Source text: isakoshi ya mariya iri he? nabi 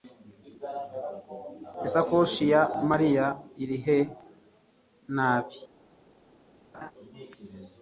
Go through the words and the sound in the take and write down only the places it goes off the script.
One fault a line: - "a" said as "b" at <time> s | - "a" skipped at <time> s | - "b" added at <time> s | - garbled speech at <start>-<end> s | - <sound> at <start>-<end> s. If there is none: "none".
- laugh at 6.7-6.9 s